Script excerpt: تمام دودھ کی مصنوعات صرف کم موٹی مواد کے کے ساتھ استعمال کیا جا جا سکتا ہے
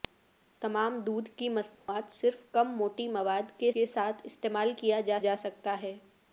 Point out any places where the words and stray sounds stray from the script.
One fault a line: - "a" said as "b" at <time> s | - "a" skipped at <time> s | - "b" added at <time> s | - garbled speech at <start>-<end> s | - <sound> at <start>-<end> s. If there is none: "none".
- dropout at 1.7-1.9 s